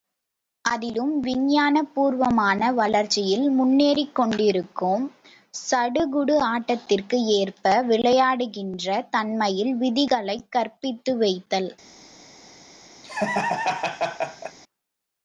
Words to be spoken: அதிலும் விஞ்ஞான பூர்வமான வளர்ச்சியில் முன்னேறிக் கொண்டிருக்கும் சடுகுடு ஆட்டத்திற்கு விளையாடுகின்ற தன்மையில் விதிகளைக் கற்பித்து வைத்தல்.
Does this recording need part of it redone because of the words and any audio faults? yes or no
yes